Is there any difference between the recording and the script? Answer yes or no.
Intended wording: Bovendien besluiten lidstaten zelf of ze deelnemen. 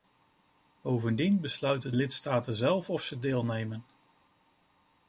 no